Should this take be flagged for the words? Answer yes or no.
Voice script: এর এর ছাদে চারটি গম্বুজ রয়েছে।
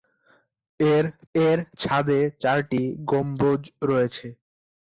no